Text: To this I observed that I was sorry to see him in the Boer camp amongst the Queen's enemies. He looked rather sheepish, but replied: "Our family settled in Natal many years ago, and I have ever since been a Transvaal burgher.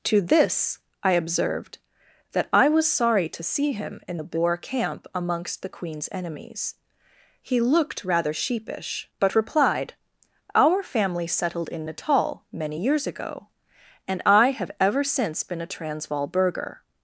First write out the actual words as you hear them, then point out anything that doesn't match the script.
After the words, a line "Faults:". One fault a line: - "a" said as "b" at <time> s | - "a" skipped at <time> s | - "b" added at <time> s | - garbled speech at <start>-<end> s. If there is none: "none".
To this I observed that I was sorry to see him in the Boer camp amongst the Queen's enemies. He looked rather sheepish, but replied: "Our family settled in Natal many years ago, and I have ever since been a Transvaal burgher.
Faults:
none